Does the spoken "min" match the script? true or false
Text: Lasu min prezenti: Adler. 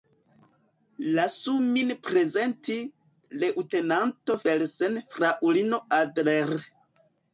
true